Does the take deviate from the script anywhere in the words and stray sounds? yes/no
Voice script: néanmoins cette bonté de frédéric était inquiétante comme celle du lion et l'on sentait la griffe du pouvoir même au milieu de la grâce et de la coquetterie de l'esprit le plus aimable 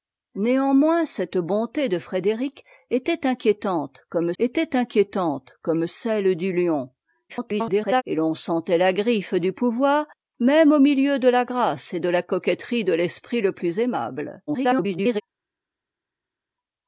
yes